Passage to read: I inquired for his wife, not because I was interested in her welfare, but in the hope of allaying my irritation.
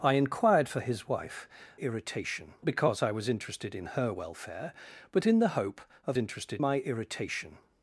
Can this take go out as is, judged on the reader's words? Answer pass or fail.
fail